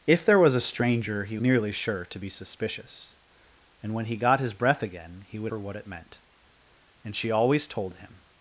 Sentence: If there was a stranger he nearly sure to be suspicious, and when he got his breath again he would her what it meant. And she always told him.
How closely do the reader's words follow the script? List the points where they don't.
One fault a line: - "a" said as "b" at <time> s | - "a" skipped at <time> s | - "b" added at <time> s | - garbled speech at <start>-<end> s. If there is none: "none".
none